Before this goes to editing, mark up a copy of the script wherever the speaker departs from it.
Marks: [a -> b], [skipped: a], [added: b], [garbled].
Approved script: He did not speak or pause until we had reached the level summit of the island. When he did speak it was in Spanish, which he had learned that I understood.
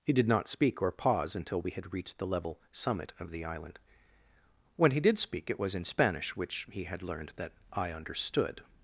He did not speak or pause until we had reached the level summit of the island. When he did speak it was in Spanish, which he had learned that I understood.